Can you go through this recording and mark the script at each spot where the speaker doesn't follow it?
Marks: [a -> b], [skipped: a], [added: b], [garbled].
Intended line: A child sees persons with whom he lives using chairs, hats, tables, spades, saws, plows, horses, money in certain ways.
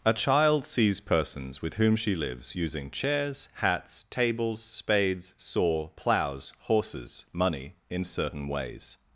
A child sees persons with whom [he -> she] lives using chairs, hats, tables, spades, [saws, -> saw] plows, horses, money in certain ways.